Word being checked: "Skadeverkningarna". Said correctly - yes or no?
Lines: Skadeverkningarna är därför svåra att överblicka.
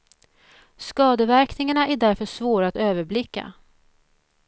yes